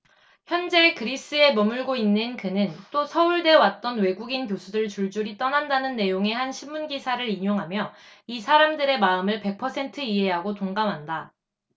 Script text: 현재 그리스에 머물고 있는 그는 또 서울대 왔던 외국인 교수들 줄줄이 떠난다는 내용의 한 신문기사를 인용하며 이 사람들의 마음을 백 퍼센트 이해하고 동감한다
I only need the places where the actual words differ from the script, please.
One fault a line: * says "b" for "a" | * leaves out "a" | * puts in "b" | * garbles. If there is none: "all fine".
all fine